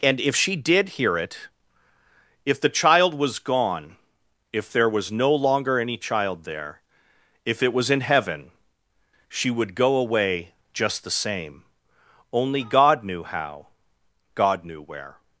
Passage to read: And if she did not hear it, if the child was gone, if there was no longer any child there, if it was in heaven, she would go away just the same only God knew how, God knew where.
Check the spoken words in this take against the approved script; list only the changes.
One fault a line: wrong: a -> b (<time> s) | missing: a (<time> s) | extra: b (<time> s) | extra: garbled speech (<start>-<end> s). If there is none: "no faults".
missing: not (0.9 s)